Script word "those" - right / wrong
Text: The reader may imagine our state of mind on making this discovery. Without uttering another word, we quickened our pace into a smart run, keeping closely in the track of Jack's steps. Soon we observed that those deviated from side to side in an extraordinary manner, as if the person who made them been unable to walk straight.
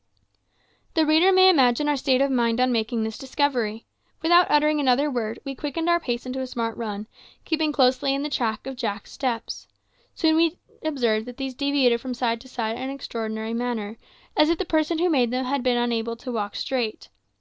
wrong